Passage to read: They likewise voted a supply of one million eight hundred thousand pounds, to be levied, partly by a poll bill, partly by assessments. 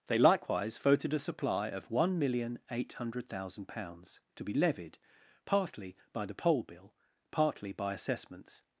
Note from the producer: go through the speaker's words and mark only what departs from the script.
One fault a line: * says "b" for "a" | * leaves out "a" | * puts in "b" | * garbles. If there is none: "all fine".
* says "the" for "a"